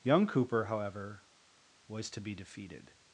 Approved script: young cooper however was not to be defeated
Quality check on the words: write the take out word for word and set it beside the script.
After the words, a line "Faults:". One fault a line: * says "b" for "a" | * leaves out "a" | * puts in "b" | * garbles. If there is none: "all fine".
young cooper however was to be defeated
Faults:
* leaves out "not"